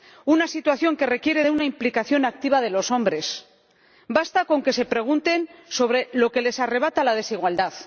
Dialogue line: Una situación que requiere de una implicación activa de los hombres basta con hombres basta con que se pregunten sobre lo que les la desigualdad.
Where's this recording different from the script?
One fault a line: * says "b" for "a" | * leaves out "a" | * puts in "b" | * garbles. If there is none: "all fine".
* leaves out "hombres basta con"
* puts in "arrebata"